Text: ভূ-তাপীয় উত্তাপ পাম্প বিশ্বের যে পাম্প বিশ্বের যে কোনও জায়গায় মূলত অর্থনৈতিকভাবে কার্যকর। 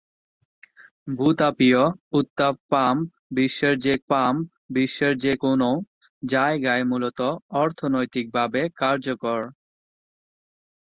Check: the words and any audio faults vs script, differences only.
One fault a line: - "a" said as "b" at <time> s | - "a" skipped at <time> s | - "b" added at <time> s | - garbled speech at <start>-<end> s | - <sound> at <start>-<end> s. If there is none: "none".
none